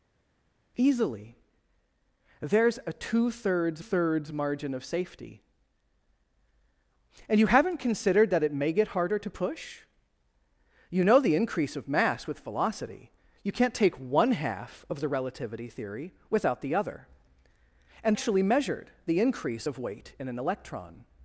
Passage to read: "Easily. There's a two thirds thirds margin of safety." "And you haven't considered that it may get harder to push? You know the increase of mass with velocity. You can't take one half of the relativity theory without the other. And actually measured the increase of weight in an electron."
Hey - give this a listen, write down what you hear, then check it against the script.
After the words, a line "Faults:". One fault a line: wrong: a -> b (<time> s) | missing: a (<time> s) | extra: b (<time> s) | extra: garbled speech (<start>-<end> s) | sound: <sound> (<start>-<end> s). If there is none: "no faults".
"Easily. There's a two thirds thirds margin of safety." "And you haven't considered that it may get harder to push? You know the increase of mass with velocity. You can't take one half of the relativity theory without the other. And actually measured the increase of weight in an electron."
Faults:
no faults